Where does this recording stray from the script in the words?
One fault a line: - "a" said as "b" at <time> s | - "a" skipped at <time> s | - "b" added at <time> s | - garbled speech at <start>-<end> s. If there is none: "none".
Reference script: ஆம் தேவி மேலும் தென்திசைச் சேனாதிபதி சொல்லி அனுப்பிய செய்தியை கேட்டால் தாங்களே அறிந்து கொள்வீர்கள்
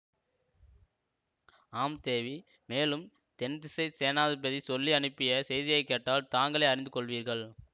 none